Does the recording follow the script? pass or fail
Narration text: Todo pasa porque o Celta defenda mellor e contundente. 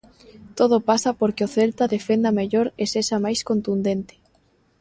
fail